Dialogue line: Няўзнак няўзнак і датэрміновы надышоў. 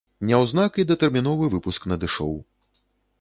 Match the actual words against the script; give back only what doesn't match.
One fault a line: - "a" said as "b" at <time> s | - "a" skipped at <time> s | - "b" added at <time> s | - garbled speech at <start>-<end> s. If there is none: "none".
- "няўзнак" skipped at 0.8 s
- "выпуск" added at 1.5 s